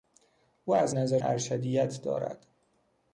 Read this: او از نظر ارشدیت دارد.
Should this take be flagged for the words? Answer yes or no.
no